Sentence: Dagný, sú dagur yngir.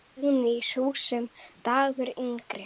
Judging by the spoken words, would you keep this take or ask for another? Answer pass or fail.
fail